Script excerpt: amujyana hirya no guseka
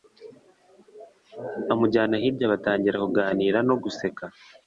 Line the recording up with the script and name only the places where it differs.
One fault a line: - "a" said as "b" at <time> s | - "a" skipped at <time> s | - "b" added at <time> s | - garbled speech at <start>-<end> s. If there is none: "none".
- "batangira kuganira" added at 2.5 s